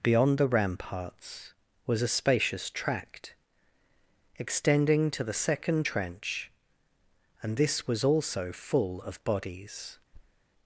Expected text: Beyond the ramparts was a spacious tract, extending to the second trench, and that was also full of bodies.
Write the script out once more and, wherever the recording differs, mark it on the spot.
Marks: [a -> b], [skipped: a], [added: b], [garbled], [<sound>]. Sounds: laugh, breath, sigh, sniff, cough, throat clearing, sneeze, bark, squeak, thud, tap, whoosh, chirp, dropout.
Beyond the ramparts was a spacious tract, extending to the second trench, and [that -> this] was also full of bodies. [thud]